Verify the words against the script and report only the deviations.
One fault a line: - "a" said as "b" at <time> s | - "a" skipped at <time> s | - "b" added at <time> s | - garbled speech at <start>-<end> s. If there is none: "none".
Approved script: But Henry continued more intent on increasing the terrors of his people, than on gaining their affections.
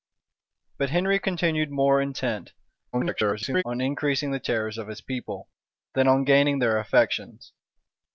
- garbled speech at 2.9-3.6 s